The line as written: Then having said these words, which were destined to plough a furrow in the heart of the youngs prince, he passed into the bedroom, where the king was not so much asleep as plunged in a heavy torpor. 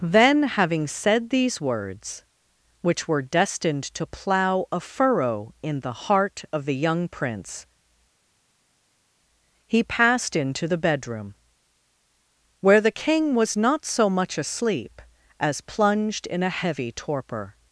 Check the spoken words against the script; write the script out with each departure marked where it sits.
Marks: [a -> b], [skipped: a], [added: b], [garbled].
Then having said these words, which were destined to plough a furrow in the heart of the [youngs -> young] prince, he passed into the bedroom, where the king was not so much asleep as plunged in a heavy torpor.